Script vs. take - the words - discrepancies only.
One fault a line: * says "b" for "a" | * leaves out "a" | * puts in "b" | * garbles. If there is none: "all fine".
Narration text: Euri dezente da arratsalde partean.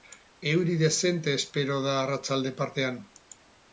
* puts in "espero"